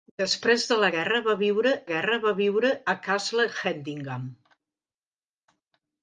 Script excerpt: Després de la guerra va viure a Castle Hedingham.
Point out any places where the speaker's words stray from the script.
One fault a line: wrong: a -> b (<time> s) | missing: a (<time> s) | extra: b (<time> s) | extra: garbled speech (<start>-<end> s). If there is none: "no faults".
extra: guerra va viure (1.9 s)